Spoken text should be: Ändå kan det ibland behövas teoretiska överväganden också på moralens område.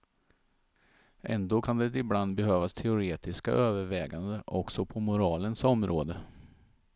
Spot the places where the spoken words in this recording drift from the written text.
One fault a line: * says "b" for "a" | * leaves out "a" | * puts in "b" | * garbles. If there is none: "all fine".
all fine